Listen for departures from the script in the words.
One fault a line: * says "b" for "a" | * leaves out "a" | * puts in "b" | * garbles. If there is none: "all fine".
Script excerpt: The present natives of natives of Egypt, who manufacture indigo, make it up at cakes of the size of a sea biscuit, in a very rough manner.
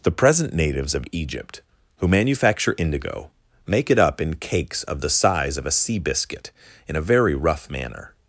* leaves out "natives of"
* says "in" for "at"